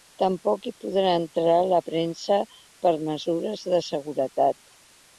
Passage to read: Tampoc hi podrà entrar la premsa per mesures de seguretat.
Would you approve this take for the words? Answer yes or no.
yes